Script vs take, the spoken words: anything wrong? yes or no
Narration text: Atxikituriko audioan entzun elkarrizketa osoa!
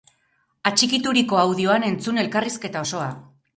no